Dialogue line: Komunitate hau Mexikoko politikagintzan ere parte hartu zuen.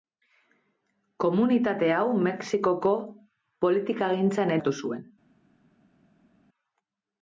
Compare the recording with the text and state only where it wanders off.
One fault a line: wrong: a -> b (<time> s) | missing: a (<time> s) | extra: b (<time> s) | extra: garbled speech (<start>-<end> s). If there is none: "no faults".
missing: ere parte (4.6 s)